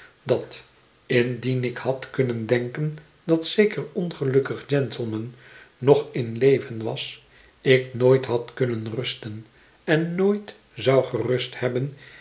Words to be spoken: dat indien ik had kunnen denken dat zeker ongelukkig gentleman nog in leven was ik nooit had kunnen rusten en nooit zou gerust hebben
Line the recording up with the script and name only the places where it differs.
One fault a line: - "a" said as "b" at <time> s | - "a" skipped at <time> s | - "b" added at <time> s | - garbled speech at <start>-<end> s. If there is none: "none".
none